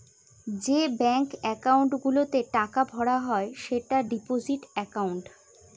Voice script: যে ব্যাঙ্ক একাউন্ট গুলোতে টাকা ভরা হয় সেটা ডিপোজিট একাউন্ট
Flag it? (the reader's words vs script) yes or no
no